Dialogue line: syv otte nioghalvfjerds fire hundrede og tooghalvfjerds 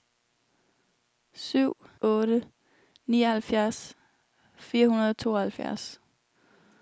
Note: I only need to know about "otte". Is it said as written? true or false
true